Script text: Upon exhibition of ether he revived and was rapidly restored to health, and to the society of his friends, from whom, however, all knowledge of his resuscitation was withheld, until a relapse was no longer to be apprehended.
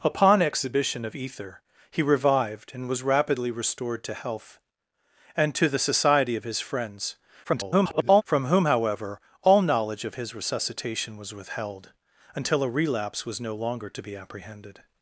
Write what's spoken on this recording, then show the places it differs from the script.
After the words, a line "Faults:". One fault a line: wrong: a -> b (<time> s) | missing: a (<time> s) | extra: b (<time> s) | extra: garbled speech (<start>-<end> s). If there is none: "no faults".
Upon exhibition of ether he revived and was rapidly restored to health, and to the society of his friends, [garbled] from whom, however, all knowledge of his resuscitation was withheld, until a relapse was no longer to be apprehended.
Faults:
extra: garbled speech (7.4-8.2 s)